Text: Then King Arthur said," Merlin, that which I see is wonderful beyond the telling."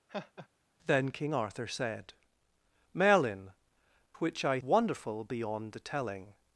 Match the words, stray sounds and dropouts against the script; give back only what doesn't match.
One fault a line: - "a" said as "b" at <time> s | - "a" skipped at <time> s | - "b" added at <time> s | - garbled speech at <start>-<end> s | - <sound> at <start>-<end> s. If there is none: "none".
- laugh at 0.1-0.5 s
- "that" skipped at 3.5 s
- "see is" skipped at 4.6 s